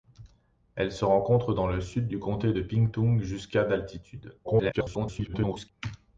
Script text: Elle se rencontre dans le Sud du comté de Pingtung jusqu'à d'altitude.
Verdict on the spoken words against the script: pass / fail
fail